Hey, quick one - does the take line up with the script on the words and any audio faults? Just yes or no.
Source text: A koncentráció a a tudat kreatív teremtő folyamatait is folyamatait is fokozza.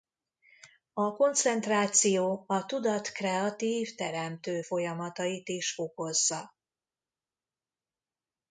no